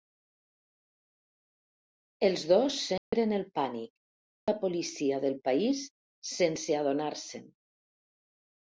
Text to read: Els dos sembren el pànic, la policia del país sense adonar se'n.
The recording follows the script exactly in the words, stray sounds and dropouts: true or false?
false